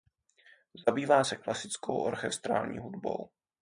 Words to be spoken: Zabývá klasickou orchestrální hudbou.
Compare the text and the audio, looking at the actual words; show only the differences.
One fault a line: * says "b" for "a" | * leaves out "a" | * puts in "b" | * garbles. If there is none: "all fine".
* puts in "se"